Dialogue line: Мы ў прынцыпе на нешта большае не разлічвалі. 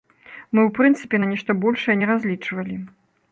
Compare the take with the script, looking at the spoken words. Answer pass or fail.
pass